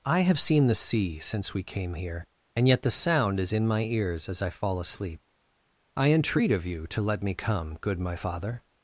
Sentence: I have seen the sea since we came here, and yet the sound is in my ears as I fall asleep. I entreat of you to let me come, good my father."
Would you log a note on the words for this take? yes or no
no